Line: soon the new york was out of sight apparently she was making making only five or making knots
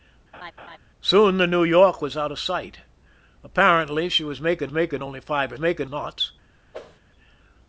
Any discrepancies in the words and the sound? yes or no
yes